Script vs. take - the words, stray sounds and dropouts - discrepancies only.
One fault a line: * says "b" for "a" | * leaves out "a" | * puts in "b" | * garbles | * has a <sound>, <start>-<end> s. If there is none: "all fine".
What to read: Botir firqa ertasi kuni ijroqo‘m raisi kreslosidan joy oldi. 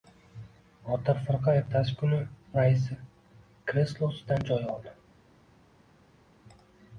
* leaves out "ijroqo‘m"